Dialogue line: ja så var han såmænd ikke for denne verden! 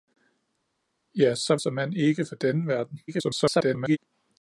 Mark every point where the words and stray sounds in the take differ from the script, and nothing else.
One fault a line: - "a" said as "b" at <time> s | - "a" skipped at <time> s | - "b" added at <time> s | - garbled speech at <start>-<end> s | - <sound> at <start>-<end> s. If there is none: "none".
- "var han" skipped at 1.6 s
- garbled speech at 3.1-4.0 s